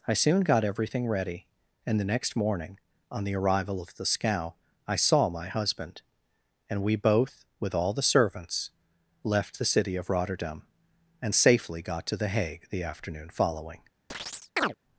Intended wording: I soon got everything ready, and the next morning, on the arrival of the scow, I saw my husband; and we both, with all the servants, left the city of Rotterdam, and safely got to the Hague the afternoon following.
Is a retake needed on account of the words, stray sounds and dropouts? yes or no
yes